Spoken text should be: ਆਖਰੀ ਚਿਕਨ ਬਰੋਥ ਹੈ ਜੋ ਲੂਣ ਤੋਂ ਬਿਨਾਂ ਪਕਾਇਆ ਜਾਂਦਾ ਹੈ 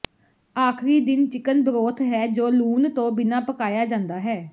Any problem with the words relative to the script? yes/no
yes